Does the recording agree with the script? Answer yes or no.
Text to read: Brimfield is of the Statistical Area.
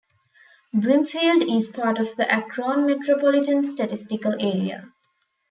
no